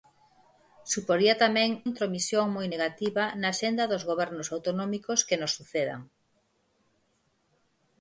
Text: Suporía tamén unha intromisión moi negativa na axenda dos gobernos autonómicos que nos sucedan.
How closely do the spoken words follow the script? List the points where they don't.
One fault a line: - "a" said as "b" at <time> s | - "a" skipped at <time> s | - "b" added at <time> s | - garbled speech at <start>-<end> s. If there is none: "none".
- "unha" skipped at 1.7 s